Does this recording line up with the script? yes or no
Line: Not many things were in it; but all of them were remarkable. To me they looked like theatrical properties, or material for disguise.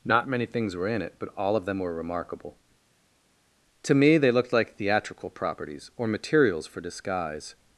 no